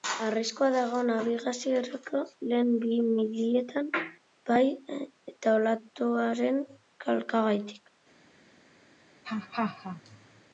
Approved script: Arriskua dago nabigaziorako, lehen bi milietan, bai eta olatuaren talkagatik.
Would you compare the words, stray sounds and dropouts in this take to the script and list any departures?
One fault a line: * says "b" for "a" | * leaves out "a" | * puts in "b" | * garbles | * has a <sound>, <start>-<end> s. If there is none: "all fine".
* has a laugh, 9.2-10.4 s